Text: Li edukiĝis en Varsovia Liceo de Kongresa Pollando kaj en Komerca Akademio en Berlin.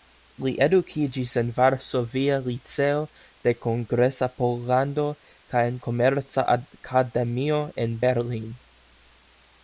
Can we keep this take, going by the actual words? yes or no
yes